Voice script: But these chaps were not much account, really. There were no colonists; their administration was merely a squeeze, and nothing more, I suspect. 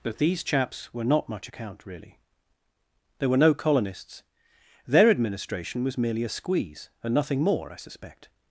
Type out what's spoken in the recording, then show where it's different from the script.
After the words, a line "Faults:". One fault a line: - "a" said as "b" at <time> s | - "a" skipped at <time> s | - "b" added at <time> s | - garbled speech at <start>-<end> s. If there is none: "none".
But these chaps were not much account, really. There were no colonists; their administration was merely a squeeze, and nothing more, I suspect.
Faults:
none